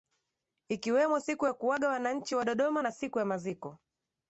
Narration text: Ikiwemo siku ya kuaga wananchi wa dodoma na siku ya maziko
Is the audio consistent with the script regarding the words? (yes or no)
yes